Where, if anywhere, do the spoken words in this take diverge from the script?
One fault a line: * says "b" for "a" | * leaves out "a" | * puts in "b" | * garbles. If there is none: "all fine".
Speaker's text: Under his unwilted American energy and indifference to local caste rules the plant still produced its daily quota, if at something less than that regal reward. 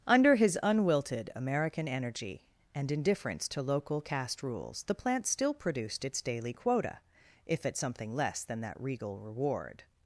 all fine